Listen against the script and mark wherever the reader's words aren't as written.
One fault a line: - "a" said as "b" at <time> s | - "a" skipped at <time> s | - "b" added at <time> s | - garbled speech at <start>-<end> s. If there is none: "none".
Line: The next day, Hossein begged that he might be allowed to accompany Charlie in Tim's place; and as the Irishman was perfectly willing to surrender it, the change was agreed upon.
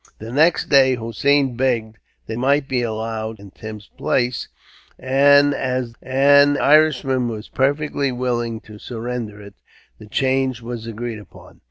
- "he" skipped at 2.4 s
- "to accompany Charlie" skipped at 3.4 s
- "the" said as "and" at 6.0 s